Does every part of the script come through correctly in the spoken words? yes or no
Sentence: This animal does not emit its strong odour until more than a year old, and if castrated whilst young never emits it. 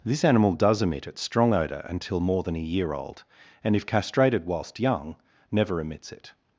no